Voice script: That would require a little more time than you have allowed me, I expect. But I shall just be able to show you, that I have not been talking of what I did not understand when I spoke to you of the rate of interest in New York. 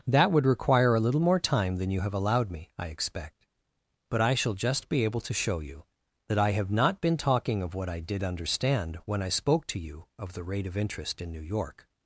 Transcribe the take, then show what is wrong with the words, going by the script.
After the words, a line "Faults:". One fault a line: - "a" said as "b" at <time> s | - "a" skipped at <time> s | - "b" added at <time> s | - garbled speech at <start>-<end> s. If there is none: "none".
That would require a little more time than you have allowed me, I expect. But I shall just be able to show you, that I have not been talking of what I did understand when I spoke to you of the rate of interest in New York.
Faults:
- "not" skipped at 8.2 s